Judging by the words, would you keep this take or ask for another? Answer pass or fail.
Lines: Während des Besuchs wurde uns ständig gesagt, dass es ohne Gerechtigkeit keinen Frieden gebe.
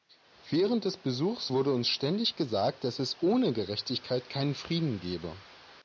pass